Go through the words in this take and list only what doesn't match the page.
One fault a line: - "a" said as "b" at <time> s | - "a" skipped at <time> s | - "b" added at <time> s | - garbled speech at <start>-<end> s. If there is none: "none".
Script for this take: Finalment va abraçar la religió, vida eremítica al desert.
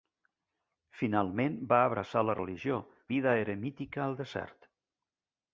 none